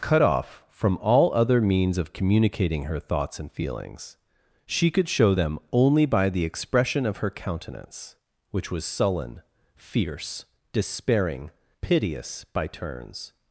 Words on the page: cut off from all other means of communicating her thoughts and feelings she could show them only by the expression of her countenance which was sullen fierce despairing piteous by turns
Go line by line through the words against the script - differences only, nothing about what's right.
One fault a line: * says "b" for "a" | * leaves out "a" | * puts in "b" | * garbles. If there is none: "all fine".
all fine